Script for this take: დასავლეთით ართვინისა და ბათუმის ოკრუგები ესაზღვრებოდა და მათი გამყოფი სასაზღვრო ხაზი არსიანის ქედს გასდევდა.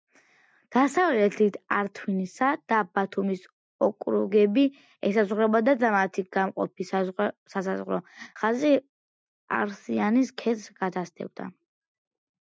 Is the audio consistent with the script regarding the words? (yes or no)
yes